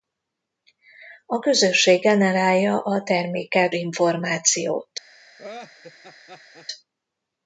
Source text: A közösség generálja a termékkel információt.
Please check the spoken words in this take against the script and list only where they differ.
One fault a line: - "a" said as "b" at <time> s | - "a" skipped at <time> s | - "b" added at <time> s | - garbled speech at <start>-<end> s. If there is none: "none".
none